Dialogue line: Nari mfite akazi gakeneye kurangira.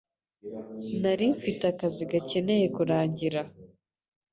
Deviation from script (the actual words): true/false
false